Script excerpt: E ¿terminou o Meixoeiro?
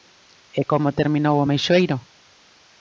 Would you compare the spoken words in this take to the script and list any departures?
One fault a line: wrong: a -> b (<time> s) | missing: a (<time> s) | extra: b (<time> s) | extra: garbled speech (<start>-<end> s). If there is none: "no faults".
extra: como (0.7 s)